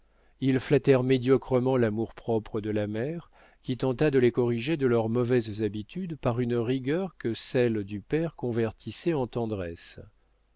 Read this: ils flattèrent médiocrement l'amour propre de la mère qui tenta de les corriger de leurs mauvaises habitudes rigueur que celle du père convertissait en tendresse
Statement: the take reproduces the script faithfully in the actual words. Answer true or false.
false